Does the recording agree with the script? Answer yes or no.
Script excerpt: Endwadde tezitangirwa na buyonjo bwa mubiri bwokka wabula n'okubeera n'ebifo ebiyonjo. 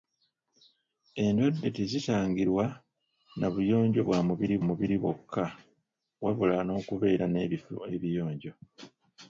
no